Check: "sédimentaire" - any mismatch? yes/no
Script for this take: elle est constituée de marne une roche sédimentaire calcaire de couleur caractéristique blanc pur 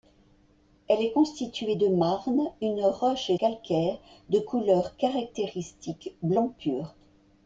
yes